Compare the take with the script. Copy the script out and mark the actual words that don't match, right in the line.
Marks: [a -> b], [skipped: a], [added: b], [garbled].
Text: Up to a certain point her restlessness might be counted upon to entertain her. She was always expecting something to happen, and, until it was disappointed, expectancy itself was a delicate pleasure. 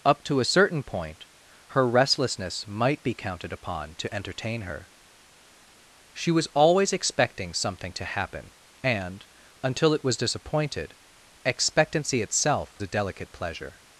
Up to a certain point her restlessness might be counted upon to entertain her. She was always expecting something to happen, and, until it was disappointed, expectancy itself [skipped: was] a delicate pleasure.